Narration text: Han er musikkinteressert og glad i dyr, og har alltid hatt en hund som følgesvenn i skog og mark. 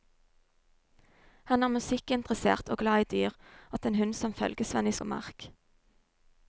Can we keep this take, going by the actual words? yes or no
no